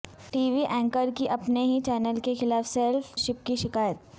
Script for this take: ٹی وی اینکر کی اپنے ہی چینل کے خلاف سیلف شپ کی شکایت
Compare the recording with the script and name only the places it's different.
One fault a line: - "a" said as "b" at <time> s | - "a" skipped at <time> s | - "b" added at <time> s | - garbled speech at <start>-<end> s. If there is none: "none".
none